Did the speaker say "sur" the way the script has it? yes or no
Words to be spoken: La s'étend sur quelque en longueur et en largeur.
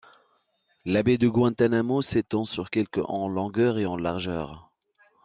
yes